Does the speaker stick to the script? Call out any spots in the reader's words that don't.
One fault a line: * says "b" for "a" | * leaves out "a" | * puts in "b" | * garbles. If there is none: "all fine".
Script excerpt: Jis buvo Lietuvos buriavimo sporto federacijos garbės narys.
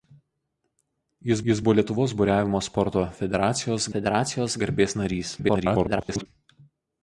* puts in "jis"
* puts in "federacijos"
* garbles